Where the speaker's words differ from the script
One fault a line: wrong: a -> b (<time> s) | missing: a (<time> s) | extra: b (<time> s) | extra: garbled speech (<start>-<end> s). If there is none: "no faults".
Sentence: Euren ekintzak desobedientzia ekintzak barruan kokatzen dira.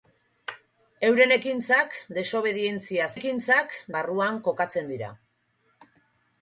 no faults